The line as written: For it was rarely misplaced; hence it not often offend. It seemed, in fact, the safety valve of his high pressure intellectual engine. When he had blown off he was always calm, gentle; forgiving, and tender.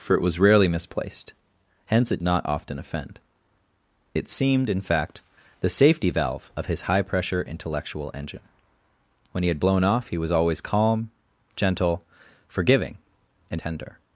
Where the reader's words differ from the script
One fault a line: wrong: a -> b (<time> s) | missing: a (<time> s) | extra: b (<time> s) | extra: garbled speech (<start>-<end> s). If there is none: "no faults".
no faults